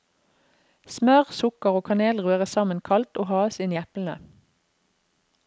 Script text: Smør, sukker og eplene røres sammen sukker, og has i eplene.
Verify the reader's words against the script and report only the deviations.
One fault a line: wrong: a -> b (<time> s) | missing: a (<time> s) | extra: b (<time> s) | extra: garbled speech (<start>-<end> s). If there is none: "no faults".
wrong: eplene -> kanel (1.8 s)
wrong: sukker -> kaldt (2.9 s)
extra: inn (3.6 s)